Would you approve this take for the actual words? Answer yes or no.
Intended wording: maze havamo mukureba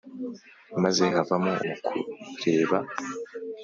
yes